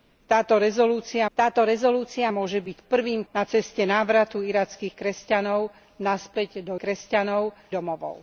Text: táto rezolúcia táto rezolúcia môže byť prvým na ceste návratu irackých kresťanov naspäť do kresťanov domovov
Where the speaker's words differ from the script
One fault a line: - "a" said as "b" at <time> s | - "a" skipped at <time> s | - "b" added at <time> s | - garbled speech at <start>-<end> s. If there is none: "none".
none